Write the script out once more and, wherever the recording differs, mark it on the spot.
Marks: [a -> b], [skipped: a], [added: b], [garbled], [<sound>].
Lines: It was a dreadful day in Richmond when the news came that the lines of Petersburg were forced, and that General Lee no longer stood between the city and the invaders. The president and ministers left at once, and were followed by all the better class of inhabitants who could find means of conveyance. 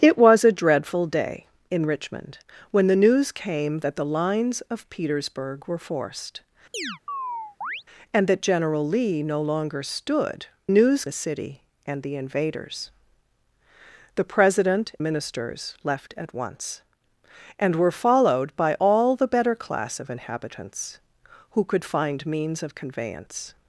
It was a dreadful day in Richmond when the news came that the lines of Petersburg were forced, [chirp] and that General Lee no longer stood [between -> news] the city and the invaders. The president [skipped: and] ministers left at once, and were followed by all the better class of inhabitants who could find means of conveyance.